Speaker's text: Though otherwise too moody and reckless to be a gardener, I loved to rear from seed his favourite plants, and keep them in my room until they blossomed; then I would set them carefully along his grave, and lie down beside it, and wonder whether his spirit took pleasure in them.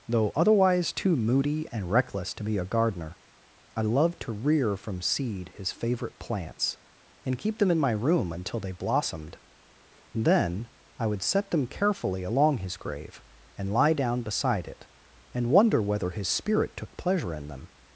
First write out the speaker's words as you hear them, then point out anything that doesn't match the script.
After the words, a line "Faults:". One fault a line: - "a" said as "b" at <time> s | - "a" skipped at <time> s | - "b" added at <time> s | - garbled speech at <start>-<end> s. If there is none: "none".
Though otherwise too moody and reckless to be a gardener, I loved to rear from seed his favourite plants, and keep them in my room until they blossomed; then I would set them carefully along his grave, and lie down beside it, and wonder whether his spirit took pleasure in them.
Faults:
none